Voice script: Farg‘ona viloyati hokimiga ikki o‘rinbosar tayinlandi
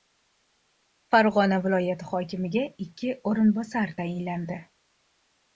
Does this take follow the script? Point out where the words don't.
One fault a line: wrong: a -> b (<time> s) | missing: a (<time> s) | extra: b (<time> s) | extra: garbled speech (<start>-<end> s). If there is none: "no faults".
no faults